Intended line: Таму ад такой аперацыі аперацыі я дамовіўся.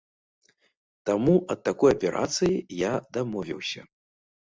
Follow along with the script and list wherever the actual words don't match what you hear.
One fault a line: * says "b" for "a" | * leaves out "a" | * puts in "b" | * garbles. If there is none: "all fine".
* leaves out "аперацыі"